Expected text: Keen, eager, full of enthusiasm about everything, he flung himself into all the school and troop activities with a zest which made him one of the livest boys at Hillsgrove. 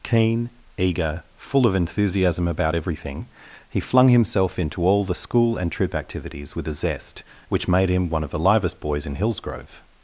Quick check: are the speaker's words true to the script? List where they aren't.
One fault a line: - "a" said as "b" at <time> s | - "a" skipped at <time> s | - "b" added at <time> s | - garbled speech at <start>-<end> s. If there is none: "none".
- "at" said as "in" at 9.0 s